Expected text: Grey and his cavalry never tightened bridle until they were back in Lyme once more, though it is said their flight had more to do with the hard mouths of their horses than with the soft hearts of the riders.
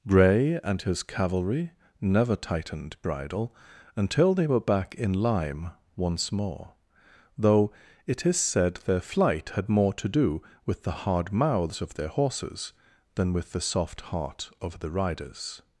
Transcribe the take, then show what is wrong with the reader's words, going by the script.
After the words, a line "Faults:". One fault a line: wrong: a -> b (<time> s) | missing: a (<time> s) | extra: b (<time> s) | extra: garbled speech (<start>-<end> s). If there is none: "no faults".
Grey and his cavalry never tightened bridle until they were back in Lyme once more, though it is said their flight had more to do with the hard mouths of their horses than with the soft heart of the riders.
Faults:
wrong: hearts -> heart (14.0 s)